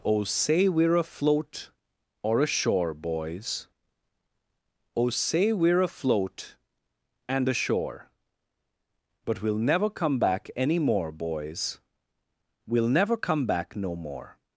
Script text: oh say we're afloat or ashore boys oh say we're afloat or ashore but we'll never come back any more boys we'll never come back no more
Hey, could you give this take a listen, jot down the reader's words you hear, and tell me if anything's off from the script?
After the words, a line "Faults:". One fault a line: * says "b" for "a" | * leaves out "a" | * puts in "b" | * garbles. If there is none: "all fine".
oh say we're afloat or ashore boys oh say we're afloat and ashore but we'll never come back any more boys we'll never come back no more
Faults:
* says "and" for "or"